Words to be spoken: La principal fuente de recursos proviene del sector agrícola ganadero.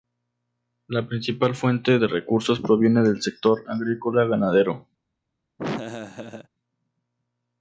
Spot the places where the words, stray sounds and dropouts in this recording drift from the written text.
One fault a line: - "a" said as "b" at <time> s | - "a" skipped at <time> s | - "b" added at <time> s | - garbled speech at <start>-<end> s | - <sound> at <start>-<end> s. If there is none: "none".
- laugh at 5.6-6.5 s